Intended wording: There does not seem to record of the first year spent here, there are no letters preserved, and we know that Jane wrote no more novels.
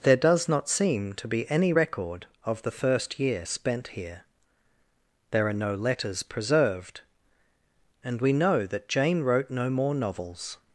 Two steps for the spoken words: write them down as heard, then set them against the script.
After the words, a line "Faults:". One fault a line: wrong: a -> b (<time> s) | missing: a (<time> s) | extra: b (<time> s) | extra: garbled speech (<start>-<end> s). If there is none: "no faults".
There does not seem to be any record of the first year spent here, there are no letters preserved, and we know that Jane wrote no more novels.
Faults:
extra: be any (1.3 s)